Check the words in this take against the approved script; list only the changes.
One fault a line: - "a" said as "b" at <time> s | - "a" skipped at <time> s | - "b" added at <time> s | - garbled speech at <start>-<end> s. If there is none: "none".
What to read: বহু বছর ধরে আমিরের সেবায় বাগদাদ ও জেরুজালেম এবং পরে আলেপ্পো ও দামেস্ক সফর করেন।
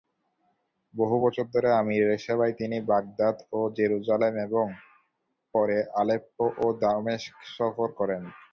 - "তিনি" added at 2.6 s